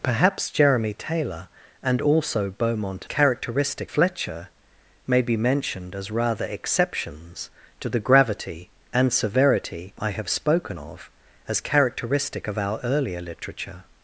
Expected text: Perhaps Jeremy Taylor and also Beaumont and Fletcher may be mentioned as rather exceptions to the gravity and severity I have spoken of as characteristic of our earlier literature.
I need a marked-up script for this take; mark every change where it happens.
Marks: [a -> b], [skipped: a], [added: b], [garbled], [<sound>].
Perhaps Jeremy Taylor and also Beaumont [and -> characteristic] Fletcher may be mentioned as rather exceptions to the gravity and severity I have spoken of as characteristic of our earlier literature.